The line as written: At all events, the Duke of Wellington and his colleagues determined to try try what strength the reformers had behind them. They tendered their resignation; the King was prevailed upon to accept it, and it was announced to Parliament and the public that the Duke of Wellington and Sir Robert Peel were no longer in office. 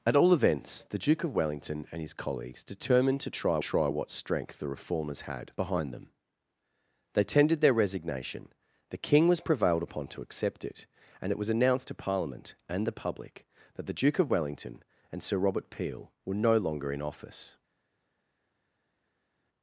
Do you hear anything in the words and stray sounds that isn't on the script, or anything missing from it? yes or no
no